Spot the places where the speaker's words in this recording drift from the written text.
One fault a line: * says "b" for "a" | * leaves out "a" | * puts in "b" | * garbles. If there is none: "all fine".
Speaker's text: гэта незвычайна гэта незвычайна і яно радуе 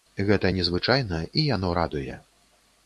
* leaves out "гэта незвычайна"